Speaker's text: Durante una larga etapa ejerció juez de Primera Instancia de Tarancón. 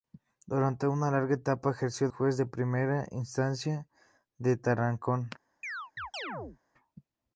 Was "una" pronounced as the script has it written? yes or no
yes